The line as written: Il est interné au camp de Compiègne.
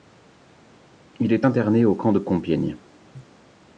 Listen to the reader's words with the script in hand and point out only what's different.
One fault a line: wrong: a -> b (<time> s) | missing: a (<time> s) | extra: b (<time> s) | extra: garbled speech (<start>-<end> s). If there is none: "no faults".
no faults